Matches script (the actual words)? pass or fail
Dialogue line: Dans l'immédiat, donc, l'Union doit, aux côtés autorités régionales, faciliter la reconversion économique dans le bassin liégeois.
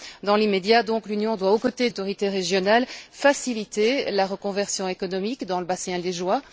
pass